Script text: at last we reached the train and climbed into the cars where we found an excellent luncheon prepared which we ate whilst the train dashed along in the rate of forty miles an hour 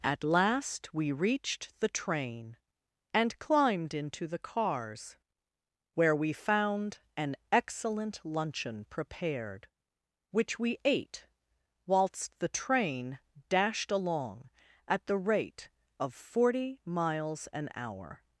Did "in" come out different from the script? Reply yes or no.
yes